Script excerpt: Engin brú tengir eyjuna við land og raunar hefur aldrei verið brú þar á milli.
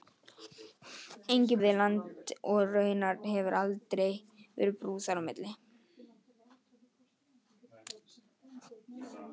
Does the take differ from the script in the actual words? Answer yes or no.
yes